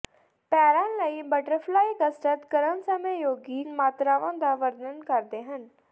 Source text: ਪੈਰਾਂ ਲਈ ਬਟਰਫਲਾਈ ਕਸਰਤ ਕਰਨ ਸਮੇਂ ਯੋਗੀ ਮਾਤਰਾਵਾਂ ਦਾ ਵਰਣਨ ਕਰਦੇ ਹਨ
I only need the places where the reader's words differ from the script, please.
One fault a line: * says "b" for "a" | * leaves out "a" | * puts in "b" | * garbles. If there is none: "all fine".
all fine